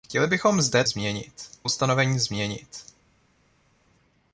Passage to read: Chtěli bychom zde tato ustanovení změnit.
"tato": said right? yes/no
no